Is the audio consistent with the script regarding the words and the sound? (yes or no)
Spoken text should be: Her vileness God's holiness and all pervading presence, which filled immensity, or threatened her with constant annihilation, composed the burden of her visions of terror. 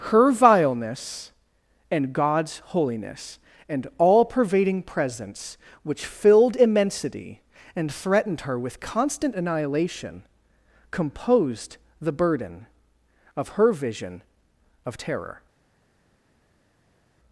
no